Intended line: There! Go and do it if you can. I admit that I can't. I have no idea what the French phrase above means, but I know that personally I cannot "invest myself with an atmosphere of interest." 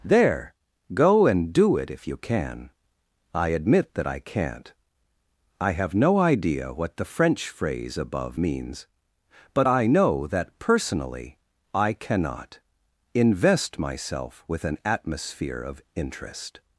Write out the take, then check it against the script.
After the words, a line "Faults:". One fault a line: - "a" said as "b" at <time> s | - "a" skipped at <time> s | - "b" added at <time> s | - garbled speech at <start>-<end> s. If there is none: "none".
There! Go and do it if you can. I admit that I can't. I have no idea what the French phrase above means, but I know that personally I cannot "invest myself with an atmosphere of interest."
Faults:
none